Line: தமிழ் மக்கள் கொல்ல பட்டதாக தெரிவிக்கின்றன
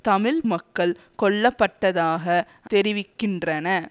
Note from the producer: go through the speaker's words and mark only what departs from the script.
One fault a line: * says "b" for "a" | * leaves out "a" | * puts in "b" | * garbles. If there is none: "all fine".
all fine